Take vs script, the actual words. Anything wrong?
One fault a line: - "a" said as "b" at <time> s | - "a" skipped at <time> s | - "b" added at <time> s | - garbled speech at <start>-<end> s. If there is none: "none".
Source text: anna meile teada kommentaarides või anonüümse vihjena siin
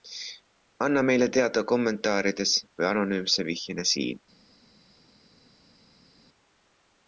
none